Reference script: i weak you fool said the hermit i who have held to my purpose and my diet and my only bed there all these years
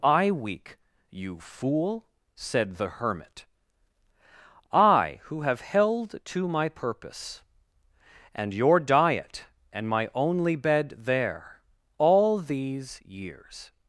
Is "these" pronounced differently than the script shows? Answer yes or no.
no